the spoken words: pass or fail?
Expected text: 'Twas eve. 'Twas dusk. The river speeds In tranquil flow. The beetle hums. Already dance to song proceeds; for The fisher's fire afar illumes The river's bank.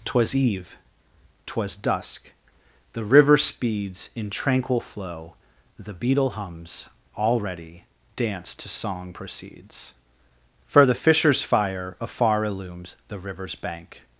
pass